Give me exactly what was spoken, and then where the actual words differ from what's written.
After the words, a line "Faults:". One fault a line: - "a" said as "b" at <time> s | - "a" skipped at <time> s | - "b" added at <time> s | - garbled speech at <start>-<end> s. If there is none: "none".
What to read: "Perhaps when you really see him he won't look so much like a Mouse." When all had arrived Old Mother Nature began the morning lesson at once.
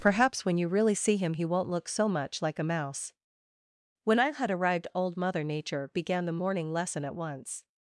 "Perhaps when you really see him he won't look so much like a Mouse." When I had arrived Old Mother Nature began the morning lesson at once.
Faults:
- "all" said as "I" at 4.2 s